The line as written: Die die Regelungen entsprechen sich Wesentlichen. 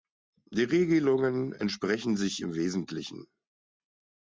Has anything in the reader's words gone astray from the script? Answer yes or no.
yes